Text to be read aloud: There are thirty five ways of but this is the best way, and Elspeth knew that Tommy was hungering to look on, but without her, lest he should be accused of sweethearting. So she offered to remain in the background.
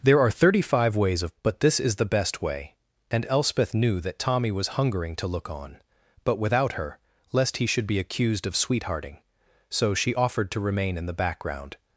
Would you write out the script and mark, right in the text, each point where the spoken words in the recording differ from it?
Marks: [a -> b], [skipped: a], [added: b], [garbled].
There are thirty five ways of but this is the best way, and Elspeth knew that Tommy was hungering to look on, but without her, lest he should be accused of sweethearting. So she offered to remain in the background.